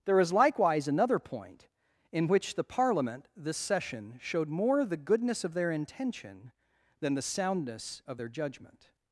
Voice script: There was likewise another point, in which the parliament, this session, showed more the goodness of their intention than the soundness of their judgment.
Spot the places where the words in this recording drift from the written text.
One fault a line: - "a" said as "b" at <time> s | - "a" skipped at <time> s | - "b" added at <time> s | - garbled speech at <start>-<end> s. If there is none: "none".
- "was" said as "is" at 0.2 s